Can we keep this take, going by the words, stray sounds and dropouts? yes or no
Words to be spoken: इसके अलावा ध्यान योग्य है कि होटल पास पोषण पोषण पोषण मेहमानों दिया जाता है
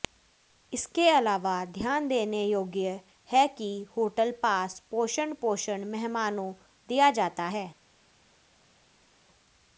no